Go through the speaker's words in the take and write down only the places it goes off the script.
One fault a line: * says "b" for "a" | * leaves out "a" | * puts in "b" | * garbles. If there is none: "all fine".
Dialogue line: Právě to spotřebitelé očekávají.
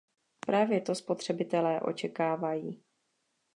all fine